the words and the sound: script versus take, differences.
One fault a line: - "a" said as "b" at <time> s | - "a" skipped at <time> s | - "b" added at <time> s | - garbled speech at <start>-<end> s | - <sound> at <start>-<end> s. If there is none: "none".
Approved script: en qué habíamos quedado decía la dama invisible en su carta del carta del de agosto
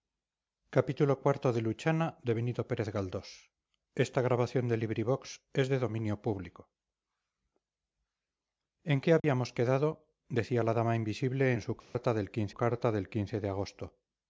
- dropout at 9.2-9.2 s
- dropout at 11.8-11.9 s